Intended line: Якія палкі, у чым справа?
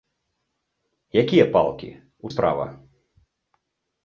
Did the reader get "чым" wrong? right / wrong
wrong